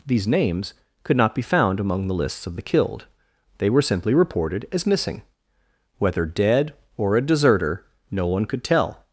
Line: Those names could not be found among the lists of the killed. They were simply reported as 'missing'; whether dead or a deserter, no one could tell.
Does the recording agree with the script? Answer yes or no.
no